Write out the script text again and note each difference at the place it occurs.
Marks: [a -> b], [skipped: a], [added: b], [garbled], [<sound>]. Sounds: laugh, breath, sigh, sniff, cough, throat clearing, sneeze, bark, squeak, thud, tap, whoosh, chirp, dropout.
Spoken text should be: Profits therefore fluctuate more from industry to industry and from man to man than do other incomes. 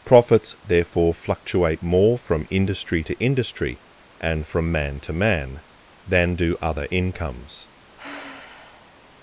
Profits therefore fluctuate more from industry to industry and from man to man than do other incomes. [sigh]